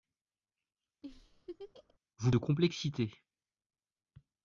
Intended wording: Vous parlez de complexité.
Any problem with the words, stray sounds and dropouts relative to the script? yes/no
yes